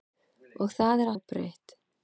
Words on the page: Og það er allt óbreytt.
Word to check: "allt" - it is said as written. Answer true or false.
false